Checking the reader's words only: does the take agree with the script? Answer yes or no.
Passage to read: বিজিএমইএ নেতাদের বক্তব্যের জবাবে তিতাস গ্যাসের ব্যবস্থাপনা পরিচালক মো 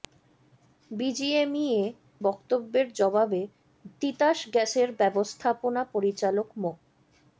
no